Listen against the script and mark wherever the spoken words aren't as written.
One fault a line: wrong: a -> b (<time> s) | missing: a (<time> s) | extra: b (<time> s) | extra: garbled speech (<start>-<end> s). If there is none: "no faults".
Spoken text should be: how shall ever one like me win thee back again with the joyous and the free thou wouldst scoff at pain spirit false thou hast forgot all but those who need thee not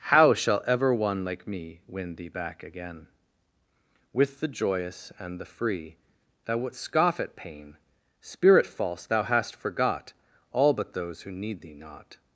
no faults